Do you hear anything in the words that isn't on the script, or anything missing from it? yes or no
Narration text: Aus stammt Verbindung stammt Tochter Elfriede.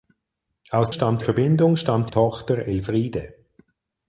no